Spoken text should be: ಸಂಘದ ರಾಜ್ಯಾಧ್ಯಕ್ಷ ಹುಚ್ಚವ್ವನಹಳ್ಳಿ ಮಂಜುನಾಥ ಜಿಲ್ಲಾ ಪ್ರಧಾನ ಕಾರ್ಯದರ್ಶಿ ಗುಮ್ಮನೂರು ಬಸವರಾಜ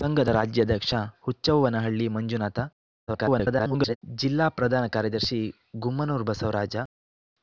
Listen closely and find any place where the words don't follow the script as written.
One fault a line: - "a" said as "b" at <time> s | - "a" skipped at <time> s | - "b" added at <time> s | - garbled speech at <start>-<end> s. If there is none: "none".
- garbled speech at 3.1-4.0 s